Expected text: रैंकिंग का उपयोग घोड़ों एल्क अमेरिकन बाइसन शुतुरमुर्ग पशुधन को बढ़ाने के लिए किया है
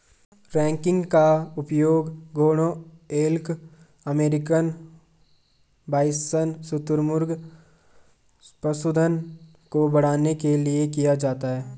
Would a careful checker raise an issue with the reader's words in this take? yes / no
yes